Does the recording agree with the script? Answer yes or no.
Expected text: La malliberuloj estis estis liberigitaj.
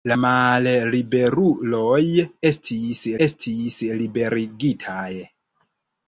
yes